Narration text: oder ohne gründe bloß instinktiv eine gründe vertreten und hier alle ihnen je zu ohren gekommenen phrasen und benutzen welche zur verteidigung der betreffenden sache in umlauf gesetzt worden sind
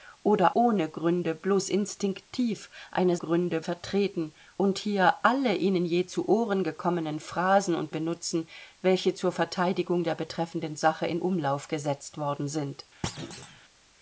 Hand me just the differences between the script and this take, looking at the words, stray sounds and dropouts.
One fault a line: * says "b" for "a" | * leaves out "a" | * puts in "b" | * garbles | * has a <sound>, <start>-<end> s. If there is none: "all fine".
* has a thud, 13.0-13.6 s